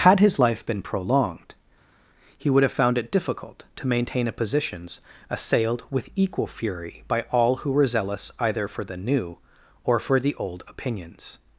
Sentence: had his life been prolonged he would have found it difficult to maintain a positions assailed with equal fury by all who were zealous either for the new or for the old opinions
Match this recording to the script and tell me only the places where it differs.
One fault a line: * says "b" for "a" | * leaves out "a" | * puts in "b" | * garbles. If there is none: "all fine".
all fine